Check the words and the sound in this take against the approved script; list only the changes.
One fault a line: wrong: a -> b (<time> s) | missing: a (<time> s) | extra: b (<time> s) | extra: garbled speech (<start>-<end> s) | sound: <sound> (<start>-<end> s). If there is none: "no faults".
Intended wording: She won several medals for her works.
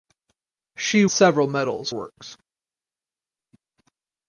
missing: won (1.1 s)
missing: for her (1.9 s)